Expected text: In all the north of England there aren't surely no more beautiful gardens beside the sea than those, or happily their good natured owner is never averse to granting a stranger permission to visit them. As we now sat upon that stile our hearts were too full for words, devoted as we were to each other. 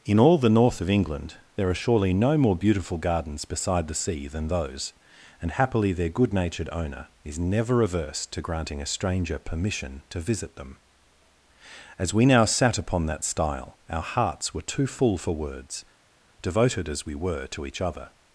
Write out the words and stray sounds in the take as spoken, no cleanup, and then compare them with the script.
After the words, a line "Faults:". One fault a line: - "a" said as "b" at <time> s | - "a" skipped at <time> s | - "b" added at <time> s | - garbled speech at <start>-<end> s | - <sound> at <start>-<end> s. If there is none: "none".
In all the north of England there are surely no more beautiful gardens beside the sea than those, and happily their good natured owner is never averse to granting a stranger permission to visit them. As we now sat upon that stile our hearts were too full for words, devoted as we were to each other.
Faults:
- "aren't" said as "are" at 1.7 s
- "or" said as "and" at 5.4 s